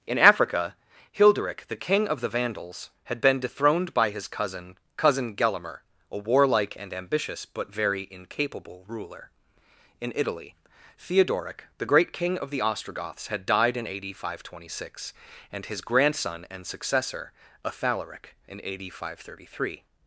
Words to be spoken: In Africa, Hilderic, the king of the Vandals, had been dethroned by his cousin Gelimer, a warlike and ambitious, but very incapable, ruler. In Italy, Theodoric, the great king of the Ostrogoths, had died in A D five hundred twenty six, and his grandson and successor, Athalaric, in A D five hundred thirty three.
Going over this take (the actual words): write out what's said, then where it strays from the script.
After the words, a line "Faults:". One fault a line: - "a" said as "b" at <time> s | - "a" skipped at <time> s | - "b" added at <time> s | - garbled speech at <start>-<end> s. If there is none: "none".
In Africa, Hilderic, the king of the Vandals, had been dethroned by his cousin cousin Gelimer, a warlike and ambitious, but very incapable, ruler. In Italy, Theodoric, the great king of the Ostrogoths, had died in A D five hundred twenty six, and his grandson and successor, Athalaric, in A D five hundred thirty three.
Faults:
- "cousin" added at 5.0 s